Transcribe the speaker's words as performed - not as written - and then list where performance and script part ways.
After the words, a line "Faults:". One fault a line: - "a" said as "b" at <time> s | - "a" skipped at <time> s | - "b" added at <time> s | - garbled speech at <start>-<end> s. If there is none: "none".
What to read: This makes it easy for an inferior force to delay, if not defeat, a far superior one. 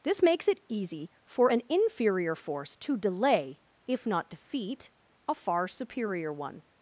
This makes it easy for an inferior force to delay, if not defeat, a far superior one.
Faults:
none